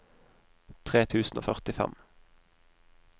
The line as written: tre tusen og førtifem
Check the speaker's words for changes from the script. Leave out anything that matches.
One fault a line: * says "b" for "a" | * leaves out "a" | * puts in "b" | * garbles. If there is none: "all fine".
all fine